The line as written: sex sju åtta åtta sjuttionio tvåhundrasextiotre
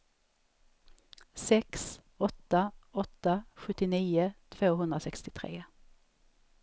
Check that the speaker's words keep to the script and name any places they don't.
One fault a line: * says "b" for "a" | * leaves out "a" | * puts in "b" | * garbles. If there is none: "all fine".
* leaves out "sju"